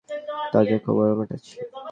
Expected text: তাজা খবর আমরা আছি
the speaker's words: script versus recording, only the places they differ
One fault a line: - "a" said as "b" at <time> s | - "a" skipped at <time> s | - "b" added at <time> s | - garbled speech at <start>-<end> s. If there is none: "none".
none